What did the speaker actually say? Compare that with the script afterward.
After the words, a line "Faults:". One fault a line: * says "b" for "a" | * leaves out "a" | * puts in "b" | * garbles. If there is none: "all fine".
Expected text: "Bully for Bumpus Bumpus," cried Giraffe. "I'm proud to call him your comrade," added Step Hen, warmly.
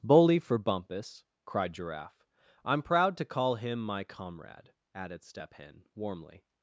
"Bully for Bumpus," cried Giraffe. "I'm proud to call him my comrade," added Step Hen, warmly.
Faults:
* leaves out "Bumpus"
* says "my" for "your"